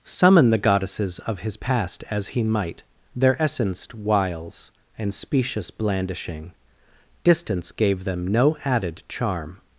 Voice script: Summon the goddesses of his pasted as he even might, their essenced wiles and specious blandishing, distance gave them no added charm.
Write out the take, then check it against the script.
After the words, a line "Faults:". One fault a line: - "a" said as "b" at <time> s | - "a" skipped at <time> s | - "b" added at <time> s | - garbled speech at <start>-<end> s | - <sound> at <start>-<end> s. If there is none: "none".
Summon the goddesses of his past as he might, their essenced wiles and specious blandishing, distance gave them no added charm.
Faults:
- "pasted" said as "past" at 1.6 s
- "even" skipped at 2.4 s